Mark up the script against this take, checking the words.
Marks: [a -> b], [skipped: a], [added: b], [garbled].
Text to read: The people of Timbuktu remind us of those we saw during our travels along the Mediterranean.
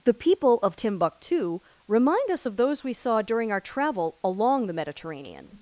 The people of Timbuktu remind us of those we saw during our [travels -> travel] along the Mediterranean.